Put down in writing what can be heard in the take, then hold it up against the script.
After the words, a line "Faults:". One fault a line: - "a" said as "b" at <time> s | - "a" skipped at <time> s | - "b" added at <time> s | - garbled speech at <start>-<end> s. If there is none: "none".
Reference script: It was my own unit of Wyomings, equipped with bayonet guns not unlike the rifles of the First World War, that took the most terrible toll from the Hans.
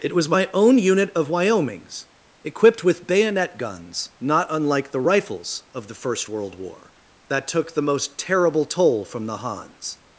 It was my own unit of Wyomings, equipped with bayonet guns not unlike the rifles of the First World War, that took the most terrible toll from the Hans.
Faults:
none